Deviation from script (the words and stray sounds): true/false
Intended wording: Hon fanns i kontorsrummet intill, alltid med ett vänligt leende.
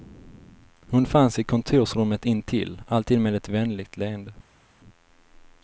false